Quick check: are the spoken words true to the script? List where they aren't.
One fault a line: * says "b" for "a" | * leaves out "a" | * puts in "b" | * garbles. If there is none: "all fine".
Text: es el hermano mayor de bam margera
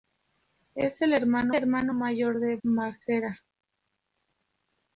* puts in "hermano"
* leaves out "bam"